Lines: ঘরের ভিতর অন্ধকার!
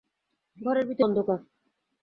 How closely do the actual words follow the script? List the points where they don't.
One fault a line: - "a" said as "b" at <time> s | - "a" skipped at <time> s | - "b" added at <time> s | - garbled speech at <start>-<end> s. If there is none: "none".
none